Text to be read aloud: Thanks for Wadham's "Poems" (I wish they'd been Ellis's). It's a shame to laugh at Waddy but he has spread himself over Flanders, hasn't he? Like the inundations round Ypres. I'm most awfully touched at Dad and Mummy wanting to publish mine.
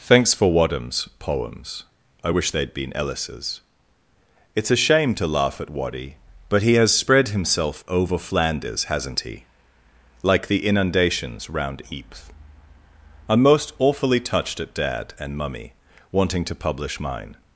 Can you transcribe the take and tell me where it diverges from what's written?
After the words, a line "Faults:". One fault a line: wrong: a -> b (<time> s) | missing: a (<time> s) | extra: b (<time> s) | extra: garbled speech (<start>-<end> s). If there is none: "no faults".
Thanks for Wadham's "Poems" (I wish they'd been Ellis's). It's a shame to laugh at Waddy but he has spread himself over Flanders, hasn't he? Like the inundations round Ypres. I'm most awfully touched at Dad and Mummy wanting to publish mine.
Faults:
no faults